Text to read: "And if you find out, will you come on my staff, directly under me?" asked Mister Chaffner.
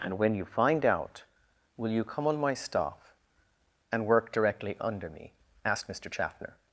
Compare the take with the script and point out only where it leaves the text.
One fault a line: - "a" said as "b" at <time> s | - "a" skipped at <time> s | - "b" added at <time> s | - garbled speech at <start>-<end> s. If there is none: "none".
- "if" said as "when" at 0.2 s
- "and work" added at 3.9 s